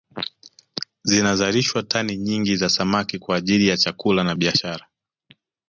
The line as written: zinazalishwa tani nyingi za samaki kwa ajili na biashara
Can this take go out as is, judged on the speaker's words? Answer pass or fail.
fail